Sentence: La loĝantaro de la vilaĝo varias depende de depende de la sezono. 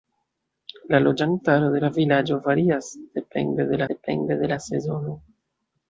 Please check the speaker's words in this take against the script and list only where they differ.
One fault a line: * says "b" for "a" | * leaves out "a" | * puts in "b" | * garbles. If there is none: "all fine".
all fine